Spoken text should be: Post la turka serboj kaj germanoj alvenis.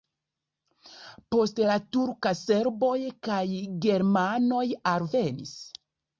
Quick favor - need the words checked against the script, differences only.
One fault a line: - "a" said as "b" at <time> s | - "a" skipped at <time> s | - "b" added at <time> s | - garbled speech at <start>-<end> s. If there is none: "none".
none